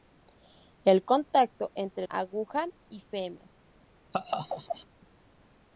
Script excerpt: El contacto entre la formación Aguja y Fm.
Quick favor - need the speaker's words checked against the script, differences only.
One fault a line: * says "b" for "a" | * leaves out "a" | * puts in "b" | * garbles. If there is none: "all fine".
* leaves out "la formación"